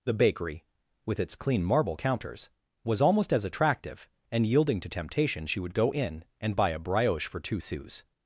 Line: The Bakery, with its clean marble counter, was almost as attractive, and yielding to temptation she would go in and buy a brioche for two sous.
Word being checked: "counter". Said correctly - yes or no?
no